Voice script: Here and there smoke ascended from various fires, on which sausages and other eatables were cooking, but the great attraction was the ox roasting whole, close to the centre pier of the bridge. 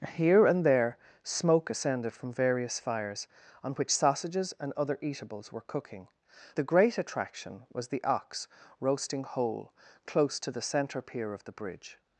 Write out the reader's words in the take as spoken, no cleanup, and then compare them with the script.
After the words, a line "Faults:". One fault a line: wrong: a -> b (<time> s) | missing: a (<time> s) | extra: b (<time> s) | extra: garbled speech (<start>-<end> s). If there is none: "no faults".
Here and there smoke ascended from various fires, on which sausages and other eatables were cooking, the great attraction was the ox roasting whole, close to the centre pier of the bridge.
Faults:
missing: but (6.1 s)